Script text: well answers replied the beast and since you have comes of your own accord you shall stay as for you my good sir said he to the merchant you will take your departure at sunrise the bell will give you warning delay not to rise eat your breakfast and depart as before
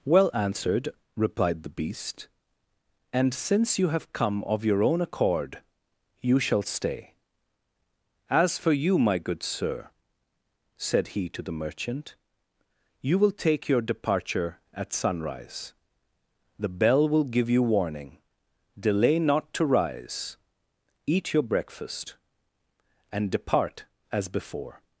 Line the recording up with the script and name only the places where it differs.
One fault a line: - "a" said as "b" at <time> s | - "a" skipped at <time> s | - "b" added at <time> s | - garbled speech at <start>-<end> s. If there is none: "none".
- "answers" said as "answered" at 0.3 s
- "comes" said as "come" at 4.1 s